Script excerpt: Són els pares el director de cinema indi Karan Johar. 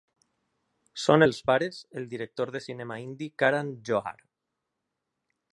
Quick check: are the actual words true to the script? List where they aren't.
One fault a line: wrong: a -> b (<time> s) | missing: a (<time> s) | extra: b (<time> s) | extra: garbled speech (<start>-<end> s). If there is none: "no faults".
no faults